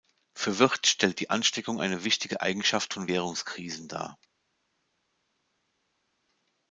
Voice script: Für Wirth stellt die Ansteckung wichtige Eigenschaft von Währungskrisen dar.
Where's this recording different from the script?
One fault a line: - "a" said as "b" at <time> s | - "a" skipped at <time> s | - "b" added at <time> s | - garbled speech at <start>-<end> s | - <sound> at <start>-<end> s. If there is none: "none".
- "eine" added at 1.8 s